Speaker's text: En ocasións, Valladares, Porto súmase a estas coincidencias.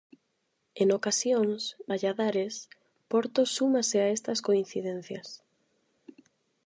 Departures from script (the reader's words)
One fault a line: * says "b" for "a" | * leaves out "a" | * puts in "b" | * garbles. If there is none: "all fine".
all fine